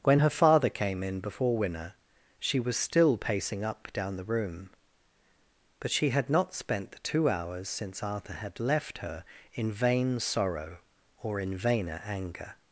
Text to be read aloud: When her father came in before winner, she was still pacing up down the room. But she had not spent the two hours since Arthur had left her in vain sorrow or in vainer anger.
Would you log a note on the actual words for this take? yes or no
no